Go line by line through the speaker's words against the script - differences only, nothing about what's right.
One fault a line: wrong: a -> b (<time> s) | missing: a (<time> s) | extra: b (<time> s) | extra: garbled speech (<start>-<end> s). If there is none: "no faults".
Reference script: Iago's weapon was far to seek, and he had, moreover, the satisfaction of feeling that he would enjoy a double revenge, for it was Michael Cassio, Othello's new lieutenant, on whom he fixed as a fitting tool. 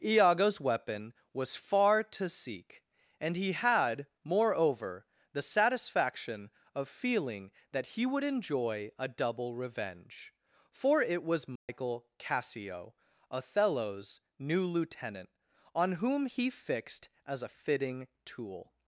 no faults